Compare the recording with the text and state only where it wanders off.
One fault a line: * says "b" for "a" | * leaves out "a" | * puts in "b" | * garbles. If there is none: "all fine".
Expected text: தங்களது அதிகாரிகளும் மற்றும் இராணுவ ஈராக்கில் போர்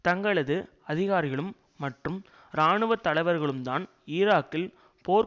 * puts in "தலைவர்களும்தான்"